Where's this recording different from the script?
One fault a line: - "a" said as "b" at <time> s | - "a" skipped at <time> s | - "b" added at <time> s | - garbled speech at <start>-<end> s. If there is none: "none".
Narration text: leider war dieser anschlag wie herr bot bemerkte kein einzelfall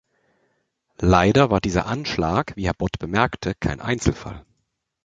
none